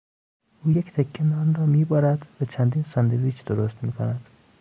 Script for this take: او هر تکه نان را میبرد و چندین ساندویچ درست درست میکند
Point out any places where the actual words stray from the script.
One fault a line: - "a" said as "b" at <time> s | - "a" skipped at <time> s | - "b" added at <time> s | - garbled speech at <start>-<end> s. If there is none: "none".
- "هر" said as "یک" at 0.7 s
- "درست" skipped at 3.8 s